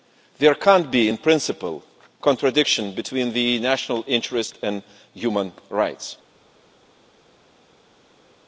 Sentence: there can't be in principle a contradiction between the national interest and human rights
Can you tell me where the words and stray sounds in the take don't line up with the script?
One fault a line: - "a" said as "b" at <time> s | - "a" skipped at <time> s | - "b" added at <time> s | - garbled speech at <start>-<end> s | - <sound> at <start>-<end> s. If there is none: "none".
none